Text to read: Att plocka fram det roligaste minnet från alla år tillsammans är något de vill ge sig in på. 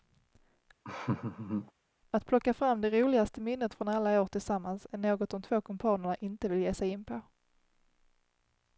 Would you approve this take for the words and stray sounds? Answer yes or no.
no